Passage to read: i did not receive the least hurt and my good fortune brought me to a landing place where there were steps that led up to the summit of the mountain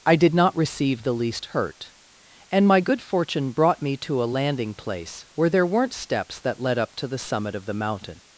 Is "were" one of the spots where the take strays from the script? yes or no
yes